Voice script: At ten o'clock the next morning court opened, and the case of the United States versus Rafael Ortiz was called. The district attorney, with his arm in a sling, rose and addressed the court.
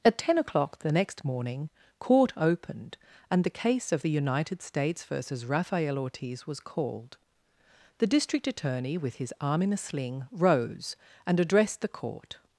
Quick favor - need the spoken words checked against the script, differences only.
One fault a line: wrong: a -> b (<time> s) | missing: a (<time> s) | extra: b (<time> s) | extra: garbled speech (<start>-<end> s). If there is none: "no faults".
no faults